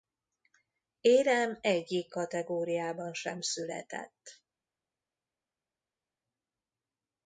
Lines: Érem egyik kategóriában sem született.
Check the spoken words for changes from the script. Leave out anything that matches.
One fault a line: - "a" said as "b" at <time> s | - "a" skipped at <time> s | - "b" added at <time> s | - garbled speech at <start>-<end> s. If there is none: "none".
none